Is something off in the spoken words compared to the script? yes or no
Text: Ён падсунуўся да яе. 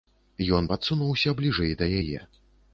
yes